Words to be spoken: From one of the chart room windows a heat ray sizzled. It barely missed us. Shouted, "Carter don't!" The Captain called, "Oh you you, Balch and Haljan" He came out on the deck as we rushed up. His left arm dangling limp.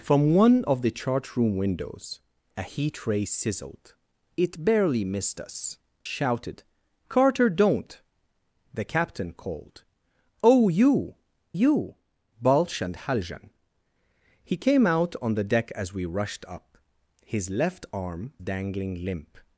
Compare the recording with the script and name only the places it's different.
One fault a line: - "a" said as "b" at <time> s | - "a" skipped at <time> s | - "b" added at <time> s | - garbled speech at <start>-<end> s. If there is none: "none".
none